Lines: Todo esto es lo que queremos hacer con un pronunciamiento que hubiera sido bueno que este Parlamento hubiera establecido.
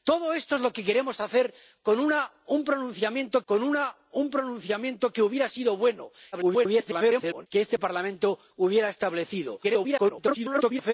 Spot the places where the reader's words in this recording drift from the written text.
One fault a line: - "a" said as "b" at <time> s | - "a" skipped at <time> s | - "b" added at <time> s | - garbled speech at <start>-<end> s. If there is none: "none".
- "con un pronunciamiento" added at 3.5 s
- garbled speech at 6.3-7.5 s
- garbled speech at 9.6-10.9 s